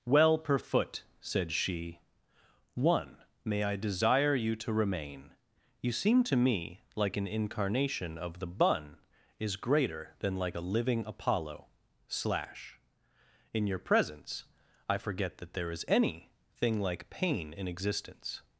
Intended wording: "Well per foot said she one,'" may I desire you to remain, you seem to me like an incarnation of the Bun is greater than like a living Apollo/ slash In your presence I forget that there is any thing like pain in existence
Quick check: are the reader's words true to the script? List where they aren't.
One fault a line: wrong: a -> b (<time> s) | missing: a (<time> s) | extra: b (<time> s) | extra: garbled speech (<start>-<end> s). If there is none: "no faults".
no faults